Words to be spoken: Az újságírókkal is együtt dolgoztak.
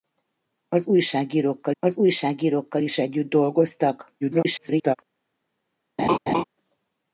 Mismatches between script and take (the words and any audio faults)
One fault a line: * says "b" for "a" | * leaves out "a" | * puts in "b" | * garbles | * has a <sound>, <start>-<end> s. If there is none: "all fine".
* puts in "az újságírókkal"
* garbles
* has a laugh, 6.0-6.4 s